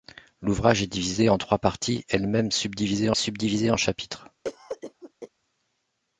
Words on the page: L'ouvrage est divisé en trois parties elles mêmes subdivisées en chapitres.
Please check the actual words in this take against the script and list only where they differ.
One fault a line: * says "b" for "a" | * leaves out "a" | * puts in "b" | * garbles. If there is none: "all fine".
* puts in "subdivisées"